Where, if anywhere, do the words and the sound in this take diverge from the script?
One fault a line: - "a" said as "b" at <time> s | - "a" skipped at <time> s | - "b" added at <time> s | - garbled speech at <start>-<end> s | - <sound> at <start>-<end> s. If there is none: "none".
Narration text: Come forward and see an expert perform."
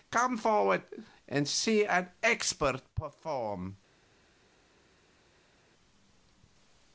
none